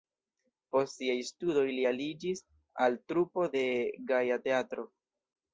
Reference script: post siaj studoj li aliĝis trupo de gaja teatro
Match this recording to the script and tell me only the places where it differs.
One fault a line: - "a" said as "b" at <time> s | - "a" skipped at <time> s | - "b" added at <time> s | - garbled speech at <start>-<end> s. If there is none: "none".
- "al" added at 2.9 s